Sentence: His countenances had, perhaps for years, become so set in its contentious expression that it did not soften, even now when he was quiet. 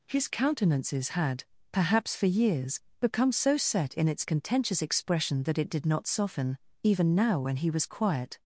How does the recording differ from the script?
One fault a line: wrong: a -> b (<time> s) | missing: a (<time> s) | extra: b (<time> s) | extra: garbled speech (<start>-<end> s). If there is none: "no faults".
no faults